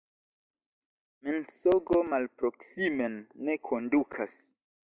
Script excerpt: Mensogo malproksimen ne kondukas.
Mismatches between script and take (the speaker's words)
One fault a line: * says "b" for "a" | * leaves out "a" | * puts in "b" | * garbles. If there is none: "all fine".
all fine